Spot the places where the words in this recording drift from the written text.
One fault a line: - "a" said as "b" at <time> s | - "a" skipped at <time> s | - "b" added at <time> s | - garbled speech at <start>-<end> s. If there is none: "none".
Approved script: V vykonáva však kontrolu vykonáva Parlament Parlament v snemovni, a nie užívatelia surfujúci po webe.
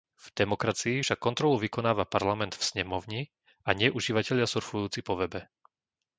- "vykonáva" said as "demokracii" at 0.3 s
- "Parlament" skipped at 2.5 s